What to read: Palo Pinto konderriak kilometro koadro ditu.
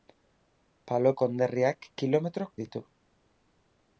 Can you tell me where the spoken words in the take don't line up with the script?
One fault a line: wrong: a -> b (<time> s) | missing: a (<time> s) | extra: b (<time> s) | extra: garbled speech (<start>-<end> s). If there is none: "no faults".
missing: Pinto (1.1 s)
missing: koadro (2.5 s)